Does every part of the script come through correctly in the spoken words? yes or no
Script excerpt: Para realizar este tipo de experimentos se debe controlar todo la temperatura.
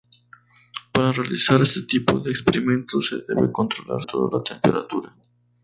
yes